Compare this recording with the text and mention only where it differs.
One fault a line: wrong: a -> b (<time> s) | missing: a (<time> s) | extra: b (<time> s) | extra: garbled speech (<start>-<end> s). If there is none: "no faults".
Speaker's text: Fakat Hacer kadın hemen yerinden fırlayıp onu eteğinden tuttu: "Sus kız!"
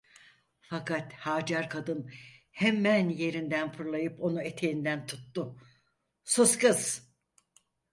no faults